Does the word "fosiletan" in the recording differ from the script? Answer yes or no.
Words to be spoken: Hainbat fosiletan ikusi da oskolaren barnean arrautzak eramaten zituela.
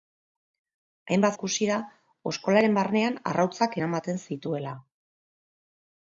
yes